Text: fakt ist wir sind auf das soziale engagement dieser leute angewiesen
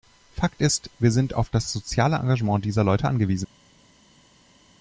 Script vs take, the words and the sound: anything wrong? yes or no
no